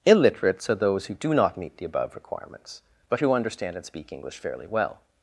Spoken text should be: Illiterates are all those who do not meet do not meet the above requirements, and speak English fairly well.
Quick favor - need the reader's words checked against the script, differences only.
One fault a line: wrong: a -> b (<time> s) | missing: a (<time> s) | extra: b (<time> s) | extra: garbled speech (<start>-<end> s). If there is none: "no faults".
missing: all (0.8 s)
wrong: do not meet the above requirements -> the above requirements but who understand (1.8 s)